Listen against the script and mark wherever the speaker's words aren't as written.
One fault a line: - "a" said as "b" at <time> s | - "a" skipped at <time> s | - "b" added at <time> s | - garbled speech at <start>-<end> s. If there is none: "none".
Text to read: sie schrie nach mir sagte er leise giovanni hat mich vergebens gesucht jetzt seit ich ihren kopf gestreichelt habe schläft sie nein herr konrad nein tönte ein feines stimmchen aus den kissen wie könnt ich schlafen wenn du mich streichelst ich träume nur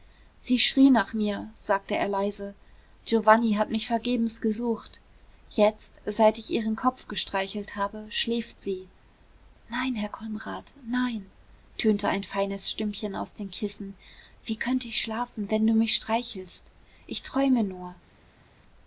none